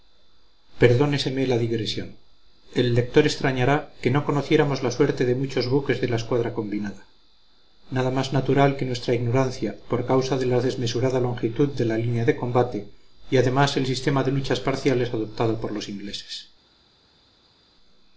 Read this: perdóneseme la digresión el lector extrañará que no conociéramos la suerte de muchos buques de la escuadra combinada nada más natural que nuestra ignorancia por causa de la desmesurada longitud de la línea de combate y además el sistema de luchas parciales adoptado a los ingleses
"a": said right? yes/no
no